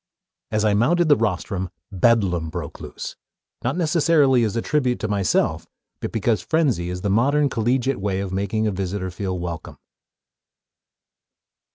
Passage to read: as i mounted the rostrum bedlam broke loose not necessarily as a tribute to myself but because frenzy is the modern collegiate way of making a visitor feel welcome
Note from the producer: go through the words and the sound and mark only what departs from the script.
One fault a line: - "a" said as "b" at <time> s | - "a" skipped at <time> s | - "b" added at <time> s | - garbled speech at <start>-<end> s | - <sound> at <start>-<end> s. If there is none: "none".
none